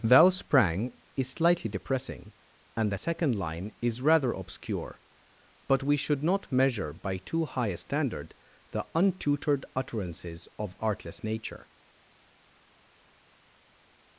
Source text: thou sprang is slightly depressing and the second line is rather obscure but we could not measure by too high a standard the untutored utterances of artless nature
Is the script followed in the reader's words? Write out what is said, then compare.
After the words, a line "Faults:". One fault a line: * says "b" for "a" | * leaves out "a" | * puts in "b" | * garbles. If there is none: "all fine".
thou sprang is slightly depressing and the second line is rather obscure but we should not measure by too high a standard the untutored utterances of artless nature
Faults:
* says "should" for "could"